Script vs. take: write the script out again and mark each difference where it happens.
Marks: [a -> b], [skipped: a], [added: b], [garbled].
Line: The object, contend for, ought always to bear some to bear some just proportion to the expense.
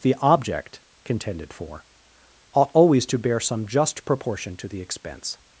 The object, [contend -> contended] for, ought always to bear some [skipped: to bear some] just proportion to the expense.